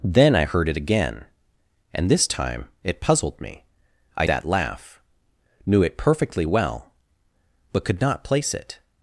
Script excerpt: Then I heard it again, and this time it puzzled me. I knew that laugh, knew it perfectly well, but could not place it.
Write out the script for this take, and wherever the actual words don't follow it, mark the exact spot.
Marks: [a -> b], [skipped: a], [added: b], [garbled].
Then I heard it again, and this time it puzzled me. I [skipped: knew] that laugh, knew it perfectly well, but could not place it.